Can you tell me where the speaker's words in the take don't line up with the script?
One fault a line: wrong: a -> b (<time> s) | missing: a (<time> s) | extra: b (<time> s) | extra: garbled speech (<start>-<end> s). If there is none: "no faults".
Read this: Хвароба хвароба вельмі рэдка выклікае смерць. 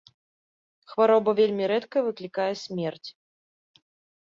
missing: хвароба (1.4 s)